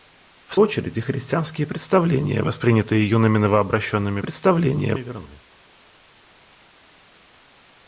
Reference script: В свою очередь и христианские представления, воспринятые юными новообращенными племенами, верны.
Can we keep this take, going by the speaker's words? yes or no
no